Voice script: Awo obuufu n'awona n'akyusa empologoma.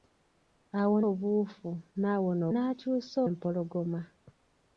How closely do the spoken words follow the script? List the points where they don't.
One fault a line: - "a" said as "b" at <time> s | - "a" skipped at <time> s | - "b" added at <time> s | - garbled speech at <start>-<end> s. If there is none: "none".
none